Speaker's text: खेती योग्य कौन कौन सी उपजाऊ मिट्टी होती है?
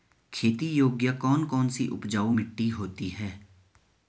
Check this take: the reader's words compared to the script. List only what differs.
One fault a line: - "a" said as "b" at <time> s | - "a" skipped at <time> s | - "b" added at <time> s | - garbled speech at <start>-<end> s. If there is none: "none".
none